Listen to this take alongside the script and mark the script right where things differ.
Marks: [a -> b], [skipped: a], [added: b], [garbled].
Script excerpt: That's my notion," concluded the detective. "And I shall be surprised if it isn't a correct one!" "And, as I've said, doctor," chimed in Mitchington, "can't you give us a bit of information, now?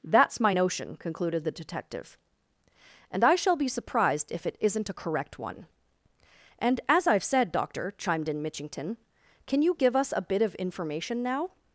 That's my notion," concluded the detective. "And I shall be surprised if it isn't a correct one!" "And, as I've said, doctor," chimed in Mitchington, ["can't -> can] you give us a bit of information, now?